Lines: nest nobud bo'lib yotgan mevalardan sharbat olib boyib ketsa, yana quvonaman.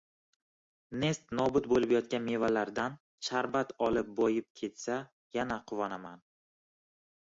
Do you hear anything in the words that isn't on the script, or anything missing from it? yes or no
no